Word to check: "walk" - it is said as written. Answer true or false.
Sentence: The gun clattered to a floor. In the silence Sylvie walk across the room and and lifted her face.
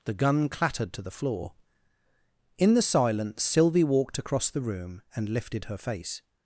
false